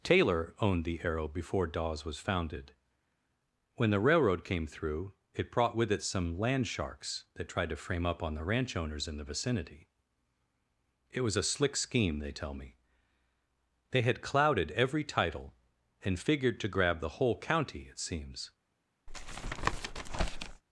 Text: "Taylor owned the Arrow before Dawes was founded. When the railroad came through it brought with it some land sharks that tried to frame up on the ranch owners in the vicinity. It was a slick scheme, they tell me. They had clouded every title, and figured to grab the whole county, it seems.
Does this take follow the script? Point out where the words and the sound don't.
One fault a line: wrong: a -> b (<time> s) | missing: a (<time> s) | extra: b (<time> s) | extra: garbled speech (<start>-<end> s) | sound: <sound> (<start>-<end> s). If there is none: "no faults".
sound: tap (19.1-20.6 s)